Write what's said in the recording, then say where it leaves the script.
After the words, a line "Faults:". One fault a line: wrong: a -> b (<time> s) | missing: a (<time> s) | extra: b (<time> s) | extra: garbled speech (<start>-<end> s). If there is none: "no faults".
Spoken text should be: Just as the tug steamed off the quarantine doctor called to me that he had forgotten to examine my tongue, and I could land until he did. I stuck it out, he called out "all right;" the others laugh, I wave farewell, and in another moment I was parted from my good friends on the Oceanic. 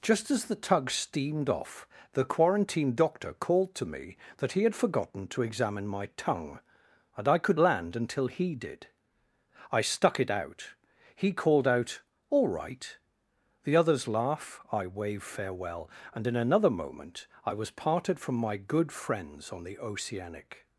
Just as the tug steamed off the quarantine doctor called to me that he had forgotten to examine my tongue, and I could land until he did. I stuck it out, he called out "all right;" the others laugh, I wave farewell, and in another moment I was parted from my good friends on the Oceanic.
Faults:
no faults